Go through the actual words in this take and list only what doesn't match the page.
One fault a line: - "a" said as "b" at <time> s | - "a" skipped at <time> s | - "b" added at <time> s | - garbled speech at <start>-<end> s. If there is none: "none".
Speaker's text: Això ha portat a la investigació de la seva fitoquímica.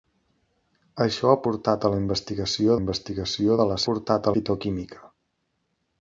- "investigació" added at 2.8 s
- "seva" said as "portat" at 3.9 s